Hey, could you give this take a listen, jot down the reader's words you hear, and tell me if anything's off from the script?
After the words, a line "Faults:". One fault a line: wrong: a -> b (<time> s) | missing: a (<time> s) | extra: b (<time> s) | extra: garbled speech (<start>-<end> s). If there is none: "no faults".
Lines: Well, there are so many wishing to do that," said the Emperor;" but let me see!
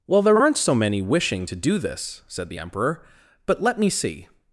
Well, there aren't so many wishing to do this," said the Emperor;" but let me see!
Faults:
wrong: are -> aren't (0.4 s)
wrong: that -> this (1.8 s)